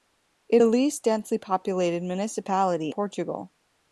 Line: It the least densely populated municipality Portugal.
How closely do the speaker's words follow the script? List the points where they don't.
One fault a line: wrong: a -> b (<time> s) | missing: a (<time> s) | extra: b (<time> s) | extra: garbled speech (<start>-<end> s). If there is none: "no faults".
no faults